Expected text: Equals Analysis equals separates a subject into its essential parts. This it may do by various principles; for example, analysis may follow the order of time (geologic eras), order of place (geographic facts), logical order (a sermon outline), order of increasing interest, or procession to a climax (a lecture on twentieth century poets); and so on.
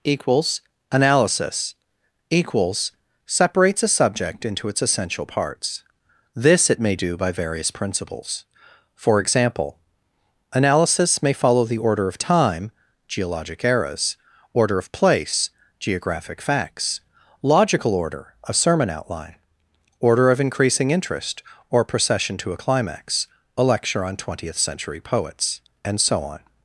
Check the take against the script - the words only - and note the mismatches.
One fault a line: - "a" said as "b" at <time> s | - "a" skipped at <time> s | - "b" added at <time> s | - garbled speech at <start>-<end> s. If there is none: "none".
none